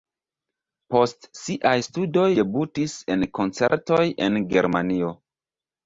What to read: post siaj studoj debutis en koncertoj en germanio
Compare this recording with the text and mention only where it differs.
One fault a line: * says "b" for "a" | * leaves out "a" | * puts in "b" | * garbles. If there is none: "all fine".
all fine